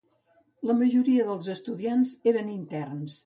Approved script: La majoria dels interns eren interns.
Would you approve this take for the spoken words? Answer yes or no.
no